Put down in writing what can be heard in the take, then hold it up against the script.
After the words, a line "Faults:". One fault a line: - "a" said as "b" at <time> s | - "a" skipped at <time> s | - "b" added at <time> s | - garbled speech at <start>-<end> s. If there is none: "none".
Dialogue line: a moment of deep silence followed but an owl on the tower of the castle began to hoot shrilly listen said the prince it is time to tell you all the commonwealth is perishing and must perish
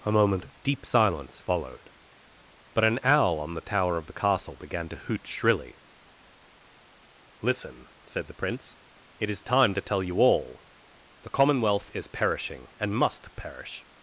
a moment of deep silence followed but an owl on the tower of the castle began to hoot shrilly listen said the prince it is time to tell you all the commonwealth is perishing and must perish
Faults:
none